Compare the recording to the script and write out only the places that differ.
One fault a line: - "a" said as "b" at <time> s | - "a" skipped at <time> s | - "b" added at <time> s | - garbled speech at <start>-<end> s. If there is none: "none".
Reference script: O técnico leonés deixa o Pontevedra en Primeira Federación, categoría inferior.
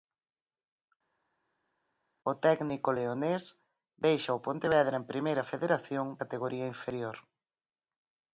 none